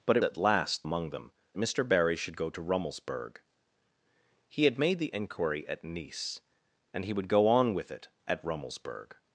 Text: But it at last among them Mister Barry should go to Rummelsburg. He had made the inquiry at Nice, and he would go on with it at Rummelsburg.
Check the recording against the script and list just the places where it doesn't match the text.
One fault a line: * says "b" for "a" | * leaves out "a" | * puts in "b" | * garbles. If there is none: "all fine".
all fine